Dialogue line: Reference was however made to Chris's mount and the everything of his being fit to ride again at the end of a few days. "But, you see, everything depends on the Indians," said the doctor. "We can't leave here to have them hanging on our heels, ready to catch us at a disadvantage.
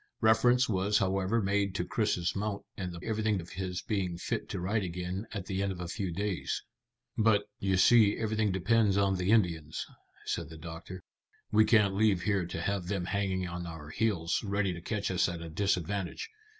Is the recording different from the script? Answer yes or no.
no